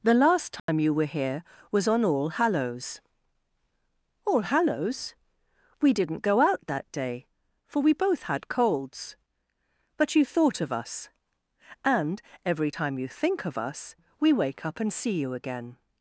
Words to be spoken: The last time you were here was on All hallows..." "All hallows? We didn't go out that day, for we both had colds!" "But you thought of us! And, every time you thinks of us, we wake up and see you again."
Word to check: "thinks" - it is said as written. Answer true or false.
false